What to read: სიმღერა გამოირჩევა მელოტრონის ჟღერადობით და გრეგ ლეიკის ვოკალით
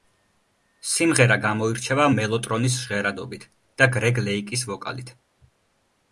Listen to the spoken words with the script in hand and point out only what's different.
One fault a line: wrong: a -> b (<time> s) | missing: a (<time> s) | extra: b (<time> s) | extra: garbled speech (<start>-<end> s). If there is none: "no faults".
no faults